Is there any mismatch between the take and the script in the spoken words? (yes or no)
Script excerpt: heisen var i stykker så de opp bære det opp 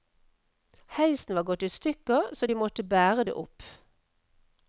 yes